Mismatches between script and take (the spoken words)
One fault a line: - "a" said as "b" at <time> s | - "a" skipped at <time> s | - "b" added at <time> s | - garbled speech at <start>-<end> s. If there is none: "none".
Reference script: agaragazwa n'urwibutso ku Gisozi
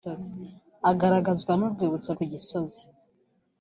none